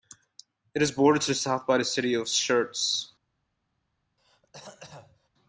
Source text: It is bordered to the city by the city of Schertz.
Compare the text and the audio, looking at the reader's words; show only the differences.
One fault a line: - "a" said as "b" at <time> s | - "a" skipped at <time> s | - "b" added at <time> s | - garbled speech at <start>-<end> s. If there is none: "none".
- "city" said as "south" at 1.3 s